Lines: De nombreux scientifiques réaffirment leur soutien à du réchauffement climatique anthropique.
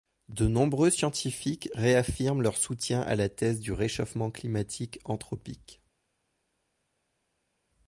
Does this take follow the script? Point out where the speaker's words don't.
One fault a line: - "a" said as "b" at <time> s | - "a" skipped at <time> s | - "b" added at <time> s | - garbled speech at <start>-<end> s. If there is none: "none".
- "la thèse" added at 3.2 s